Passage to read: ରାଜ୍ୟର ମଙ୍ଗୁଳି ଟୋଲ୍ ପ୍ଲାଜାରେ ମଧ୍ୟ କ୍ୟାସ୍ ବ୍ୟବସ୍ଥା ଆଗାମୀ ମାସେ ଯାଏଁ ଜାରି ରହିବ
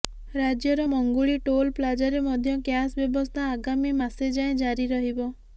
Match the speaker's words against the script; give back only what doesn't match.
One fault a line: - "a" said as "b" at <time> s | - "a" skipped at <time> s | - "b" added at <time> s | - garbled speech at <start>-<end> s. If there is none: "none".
none